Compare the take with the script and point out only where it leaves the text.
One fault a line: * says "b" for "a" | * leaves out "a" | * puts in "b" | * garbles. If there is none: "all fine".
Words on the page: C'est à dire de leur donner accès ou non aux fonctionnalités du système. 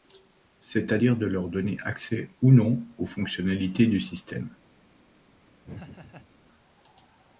all fine